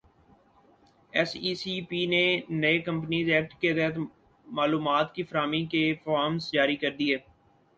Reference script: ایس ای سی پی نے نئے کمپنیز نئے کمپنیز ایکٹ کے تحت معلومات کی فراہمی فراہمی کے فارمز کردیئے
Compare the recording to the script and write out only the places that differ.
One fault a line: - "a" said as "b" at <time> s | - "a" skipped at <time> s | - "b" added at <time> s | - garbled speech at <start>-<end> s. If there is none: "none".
- "نئے کمپنیز" skipped at 3.3 s
- "فراہمی" skipped at 5.6 s
- "جاری" added at 6.5 s